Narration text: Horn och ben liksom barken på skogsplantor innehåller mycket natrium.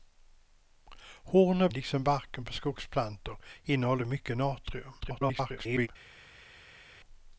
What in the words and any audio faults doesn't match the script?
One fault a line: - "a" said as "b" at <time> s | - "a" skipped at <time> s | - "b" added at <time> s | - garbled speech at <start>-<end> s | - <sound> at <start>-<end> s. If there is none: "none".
- "ben" skipped at 1.7 s
- garbled speech at 5.0-5.9 s